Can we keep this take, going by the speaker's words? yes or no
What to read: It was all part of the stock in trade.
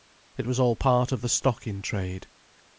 yes